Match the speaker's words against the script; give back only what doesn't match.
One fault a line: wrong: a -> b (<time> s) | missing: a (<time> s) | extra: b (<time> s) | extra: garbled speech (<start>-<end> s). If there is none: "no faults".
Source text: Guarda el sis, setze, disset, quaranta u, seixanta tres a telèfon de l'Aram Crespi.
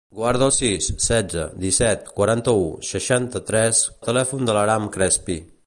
no faults